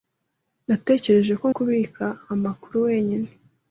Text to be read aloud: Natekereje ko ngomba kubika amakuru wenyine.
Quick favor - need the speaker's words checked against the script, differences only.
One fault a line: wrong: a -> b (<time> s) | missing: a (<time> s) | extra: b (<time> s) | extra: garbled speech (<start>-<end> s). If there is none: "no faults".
missing: ngomba (1.5 s)